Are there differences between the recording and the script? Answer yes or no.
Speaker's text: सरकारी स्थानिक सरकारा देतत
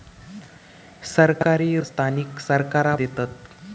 no